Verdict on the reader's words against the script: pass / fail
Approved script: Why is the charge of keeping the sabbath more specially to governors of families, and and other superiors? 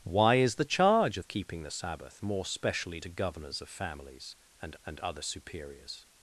pass